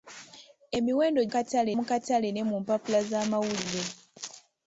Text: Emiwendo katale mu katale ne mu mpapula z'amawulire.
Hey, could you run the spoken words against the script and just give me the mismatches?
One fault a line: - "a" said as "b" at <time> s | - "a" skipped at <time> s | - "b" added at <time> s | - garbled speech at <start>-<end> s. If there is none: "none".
none